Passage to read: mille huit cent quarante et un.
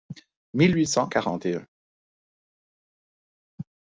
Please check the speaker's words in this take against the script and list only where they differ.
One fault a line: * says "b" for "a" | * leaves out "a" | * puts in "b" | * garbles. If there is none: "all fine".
all fine